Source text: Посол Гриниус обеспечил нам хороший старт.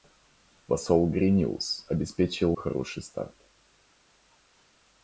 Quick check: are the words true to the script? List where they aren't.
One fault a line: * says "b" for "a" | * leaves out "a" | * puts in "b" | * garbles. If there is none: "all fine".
* leaves out "нам"